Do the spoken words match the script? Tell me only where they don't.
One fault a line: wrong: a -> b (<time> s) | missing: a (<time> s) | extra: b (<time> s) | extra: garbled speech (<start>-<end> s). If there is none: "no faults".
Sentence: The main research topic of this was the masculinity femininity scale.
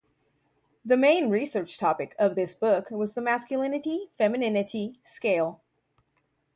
extra: book (2.5 s)